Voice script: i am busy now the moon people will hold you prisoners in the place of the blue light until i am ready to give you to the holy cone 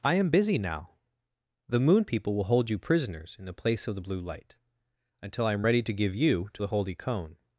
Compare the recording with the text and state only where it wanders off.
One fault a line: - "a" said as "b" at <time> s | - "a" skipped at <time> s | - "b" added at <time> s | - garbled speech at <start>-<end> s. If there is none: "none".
none